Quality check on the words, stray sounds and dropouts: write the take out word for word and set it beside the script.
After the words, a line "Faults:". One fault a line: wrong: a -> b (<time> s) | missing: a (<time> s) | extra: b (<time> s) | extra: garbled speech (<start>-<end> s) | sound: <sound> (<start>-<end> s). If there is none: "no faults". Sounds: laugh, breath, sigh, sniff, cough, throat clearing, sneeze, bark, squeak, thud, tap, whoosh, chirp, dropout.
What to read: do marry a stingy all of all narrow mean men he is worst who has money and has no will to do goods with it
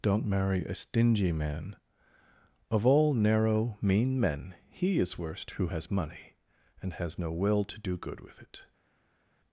don't marry a stingy man of all narrow mean men he is worst who has money and has no will to do good with it
Faults:
wrong: do -> don't (0.0 s)
wrong: all -> man (1.3 s)
wrong: goods -> good (7.9 s)